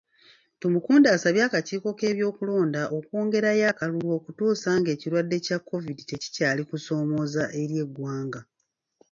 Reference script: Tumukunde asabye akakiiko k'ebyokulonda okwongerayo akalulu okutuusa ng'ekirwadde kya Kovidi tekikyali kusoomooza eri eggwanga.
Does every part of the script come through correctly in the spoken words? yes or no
yes